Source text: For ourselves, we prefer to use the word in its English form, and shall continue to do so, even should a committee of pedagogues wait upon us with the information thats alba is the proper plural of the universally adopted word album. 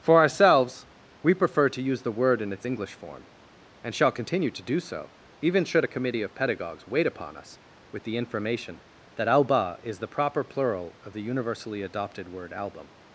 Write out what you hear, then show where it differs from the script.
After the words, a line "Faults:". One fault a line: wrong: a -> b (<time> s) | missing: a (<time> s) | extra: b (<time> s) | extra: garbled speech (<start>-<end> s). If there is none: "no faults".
For ourselves, we prefer to use the word in its English form, and shall continue to do so, even should a committee of pedagogues wait upon us with the information that alba is the proper plural of the universally adopted word album.
Faults:
wrong: thats -> that (9.2 s)